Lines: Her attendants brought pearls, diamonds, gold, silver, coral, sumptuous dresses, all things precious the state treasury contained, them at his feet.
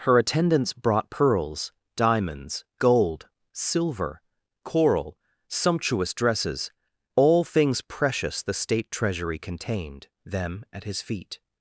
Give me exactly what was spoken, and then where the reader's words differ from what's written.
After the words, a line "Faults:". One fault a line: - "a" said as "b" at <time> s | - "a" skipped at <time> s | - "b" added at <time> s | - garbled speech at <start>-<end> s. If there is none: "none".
Her attendants brought pearls, diamonds, gold, silver, coral, sumptuous dresses, all things precious the state treasury contained, them at his feet.
Faults:
none